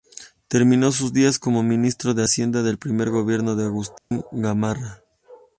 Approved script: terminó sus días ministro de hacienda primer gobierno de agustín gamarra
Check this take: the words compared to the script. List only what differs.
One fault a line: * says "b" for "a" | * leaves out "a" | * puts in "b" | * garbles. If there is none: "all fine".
* puts in "como"
* puts in "del"